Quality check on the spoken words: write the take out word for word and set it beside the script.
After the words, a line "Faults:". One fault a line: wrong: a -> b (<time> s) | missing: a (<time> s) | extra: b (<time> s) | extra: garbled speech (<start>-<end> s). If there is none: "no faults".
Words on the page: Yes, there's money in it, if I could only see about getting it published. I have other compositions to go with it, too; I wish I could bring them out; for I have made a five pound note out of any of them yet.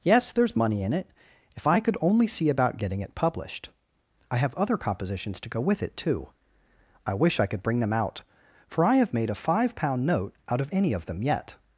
Yes, there's money in it, if I could only see about getting it published. I have other compositions to go with it, too; I wish I could bring them out; for I have made a five pound note out of any of them yet.
Faults:
no faults